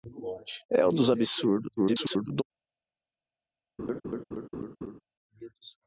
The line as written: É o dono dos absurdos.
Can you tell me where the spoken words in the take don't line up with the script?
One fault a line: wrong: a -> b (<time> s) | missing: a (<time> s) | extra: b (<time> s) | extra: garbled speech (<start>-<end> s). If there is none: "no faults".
missing: dono (0.9 s)
extra: garbled speech (1.8-2.4 s)